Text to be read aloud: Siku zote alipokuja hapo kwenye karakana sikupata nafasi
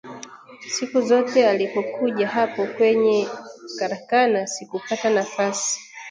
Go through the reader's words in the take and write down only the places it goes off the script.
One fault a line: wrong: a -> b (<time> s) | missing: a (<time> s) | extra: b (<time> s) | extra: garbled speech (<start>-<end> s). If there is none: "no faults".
no faults